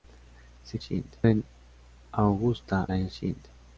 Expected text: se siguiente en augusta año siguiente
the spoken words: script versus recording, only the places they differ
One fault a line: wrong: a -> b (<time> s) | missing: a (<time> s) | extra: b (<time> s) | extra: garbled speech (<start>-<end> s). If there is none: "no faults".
no faults